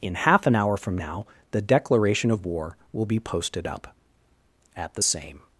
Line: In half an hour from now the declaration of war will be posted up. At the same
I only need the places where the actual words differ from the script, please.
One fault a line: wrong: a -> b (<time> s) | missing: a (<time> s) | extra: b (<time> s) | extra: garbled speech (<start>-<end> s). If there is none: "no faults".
no faults